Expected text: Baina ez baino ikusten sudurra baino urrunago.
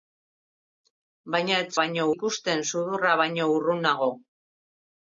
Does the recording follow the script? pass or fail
pass